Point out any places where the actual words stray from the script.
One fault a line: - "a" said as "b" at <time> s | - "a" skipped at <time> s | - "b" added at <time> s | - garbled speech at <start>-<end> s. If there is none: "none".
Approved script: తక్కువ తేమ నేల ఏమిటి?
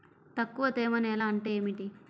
- "అంటే" added at 1.2 s